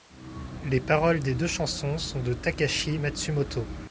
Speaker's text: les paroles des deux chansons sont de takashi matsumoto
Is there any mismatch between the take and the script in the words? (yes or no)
no